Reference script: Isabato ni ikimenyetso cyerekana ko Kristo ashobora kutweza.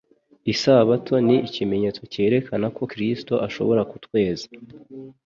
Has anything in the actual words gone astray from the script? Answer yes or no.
no